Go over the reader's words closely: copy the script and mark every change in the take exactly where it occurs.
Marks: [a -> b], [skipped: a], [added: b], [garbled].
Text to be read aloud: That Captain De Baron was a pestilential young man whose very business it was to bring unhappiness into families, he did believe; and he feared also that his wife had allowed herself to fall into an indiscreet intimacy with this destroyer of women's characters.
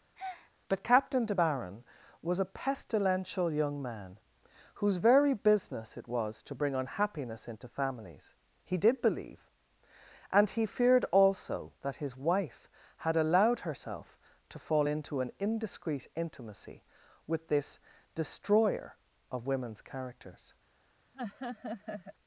[That -> But] Captain De Baron was a pestilential young man whose very business it was to bring unhappiness into families, he did believe; and he feared also that his wife had allowed herself to fall into an indiscreet intimacy with this destroyer of women's characters.